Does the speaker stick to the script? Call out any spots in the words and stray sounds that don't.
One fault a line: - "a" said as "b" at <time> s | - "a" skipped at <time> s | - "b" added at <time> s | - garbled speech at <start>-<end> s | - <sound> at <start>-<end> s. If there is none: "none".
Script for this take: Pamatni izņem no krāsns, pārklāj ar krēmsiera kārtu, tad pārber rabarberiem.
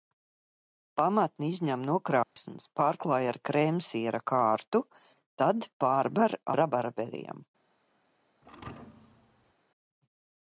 - dropout at 2.2-2.4 s
- thud at 8.4-9.5 s